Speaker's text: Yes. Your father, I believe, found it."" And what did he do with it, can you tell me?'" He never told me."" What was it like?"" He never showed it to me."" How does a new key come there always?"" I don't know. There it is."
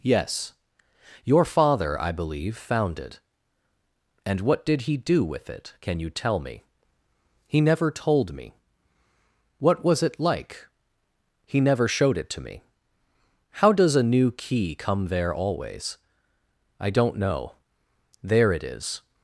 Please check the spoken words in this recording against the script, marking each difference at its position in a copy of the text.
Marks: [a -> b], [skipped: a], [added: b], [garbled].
Yes. Your father, I believe, found it."" And what did he do with it, can you tell me?'" He never told me."" What was it like?"" He never showed it to me."" How does a new key come there always?"" I don't know. There it is."